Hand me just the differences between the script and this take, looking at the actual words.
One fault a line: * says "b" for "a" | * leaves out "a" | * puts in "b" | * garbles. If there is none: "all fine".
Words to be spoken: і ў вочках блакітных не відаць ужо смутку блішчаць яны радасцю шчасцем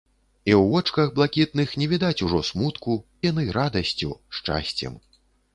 * leaves out "блішчаць"